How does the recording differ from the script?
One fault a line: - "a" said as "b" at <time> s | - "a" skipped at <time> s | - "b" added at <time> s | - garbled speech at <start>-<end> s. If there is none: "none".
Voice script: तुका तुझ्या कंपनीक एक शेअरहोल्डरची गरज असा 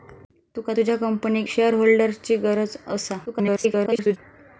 - "एक" skipped at 1.5 s
- garbled speech at 3.3-4.2 s